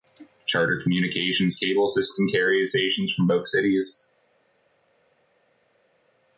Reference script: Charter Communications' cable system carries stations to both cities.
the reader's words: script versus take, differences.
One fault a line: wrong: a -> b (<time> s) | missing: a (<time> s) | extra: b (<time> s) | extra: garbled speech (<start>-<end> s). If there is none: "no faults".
wrong: to -> from (3.1 s)